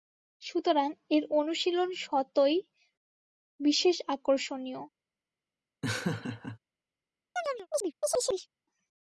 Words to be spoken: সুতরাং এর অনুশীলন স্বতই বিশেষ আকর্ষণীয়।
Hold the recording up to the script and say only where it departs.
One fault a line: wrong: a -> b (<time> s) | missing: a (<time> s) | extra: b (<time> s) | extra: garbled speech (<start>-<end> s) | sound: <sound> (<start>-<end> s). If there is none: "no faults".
sound: laugh (5.8-6.6 s)
sound: chirp (7.4-8.5 s)